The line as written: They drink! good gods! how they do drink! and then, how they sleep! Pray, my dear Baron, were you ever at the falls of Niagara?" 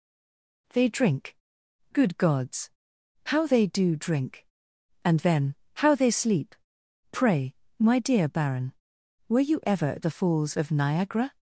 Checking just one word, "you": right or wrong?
right